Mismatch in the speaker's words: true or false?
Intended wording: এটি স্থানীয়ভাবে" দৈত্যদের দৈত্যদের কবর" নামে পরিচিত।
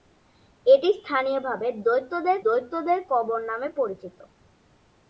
false